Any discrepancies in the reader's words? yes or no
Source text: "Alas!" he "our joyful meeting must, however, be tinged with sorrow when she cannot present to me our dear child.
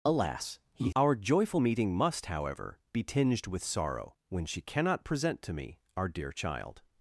no